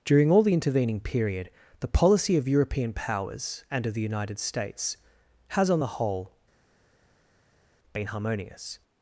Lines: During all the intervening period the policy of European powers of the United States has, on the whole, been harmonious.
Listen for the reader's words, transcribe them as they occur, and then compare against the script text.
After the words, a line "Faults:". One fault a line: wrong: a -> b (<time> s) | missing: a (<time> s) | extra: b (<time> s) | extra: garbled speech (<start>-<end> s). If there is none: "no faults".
During all the intervening period the policy of European powers and of the United States has, on the whole, been harmonious.
Faults:
extra: and (3.7 s)